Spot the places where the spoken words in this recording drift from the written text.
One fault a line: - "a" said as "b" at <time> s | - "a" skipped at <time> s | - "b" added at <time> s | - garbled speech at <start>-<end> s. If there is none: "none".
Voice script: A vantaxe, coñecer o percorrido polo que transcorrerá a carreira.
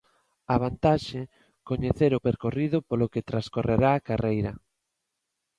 none